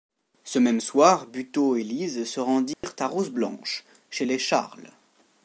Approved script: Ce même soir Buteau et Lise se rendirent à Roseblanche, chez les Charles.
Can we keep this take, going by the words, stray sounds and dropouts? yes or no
no